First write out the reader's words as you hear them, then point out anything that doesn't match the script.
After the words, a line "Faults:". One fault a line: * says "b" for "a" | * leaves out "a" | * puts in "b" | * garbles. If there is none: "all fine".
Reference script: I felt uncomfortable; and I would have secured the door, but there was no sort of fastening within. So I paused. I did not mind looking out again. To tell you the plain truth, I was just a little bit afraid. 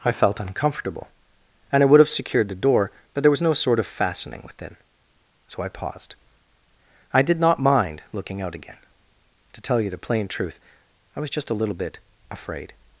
I felt uncomfortable; and I would have secured the door, but there was no sort of fastening within. So I paused. I did not mind looking out again. To tell you the plain truth, I was just a little bit afraid.
Faults:
all fine